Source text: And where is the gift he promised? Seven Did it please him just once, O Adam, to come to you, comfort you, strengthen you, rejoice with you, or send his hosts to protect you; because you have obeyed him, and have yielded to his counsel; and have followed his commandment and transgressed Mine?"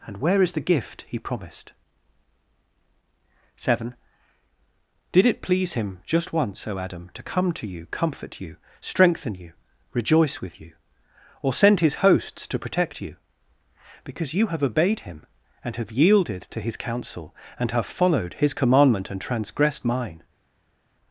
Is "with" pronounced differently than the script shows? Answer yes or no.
no